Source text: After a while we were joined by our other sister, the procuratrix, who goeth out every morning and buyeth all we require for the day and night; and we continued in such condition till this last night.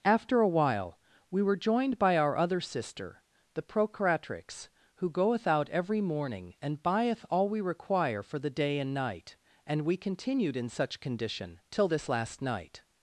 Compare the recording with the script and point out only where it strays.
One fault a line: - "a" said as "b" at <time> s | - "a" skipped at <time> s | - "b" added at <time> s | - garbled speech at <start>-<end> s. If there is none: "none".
none